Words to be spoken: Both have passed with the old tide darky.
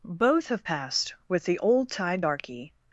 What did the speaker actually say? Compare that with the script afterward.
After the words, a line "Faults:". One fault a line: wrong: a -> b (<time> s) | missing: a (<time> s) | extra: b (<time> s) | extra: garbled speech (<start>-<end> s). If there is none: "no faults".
Both have passed with the old tide darky.
Faults:
no faults